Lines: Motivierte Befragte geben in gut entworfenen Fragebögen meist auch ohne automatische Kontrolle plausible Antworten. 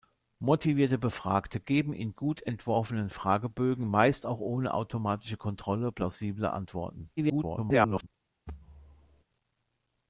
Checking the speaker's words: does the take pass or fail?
fail